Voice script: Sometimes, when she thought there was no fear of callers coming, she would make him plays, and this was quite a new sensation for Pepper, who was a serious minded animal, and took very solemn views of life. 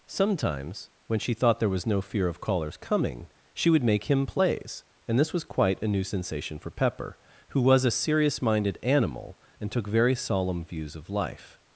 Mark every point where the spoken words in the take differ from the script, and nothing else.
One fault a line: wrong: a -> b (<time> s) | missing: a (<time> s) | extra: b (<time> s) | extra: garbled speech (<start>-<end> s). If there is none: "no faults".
no faults